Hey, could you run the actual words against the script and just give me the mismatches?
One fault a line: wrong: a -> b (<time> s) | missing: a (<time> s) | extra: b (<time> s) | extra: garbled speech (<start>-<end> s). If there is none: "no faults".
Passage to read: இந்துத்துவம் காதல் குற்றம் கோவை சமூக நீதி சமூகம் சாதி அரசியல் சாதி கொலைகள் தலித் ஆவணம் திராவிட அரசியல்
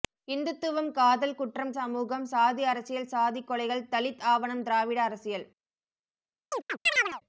missing: கோவை சமூக நீதி (1.7 s)